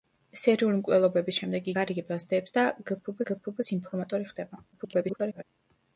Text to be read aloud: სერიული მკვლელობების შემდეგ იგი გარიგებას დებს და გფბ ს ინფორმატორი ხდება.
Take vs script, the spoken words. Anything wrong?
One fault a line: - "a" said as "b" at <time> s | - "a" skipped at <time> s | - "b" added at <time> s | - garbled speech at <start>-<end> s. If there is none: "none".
- "იგი" skipped at 1.7 s
- "გფბ" added at 3.3 s
- garbled speech at 4.7-5.4 s